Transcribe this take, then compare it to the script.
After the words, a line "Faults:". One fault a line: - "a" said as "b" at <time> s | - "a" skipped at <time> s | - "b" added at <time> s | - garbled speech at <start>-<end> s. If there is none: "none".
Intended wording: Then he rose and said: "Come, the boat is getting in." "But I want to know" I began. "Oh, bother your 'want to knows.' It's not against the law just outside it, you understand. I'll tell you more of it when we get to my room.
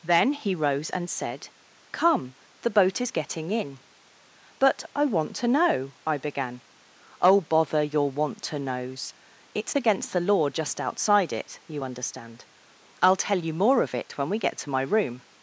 Then he rose and said: "Come, the boat is getting in." "But I want to know" I began. "Oh, bother your 'want to knows.' It's against the law just outside it, you understand. I'll tell you more of it when we get to my room.
Faults:
- "not" skipped at 9.8 s